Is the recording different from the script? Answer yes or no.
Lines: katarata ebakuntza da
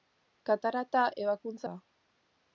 no